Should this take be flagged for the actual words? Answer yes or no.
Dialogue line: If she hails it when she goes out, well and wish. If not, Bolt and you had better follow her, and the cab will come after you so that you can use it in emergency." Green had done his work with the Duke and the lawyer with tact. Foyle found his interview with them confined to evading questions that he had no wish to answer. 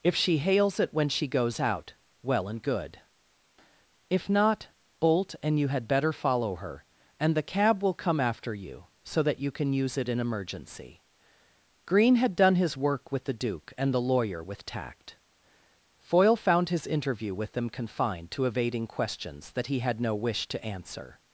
yes